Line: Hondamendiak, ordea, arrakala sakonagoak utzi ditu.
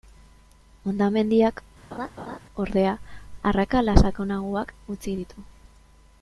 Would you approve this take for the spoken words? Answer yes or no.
yes